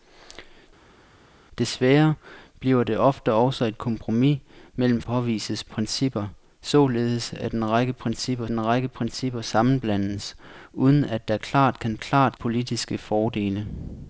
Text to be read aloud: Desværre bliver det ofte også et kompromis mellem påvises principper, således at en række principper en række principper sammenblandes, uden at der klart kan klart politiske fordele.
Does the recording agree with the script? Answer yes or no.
yes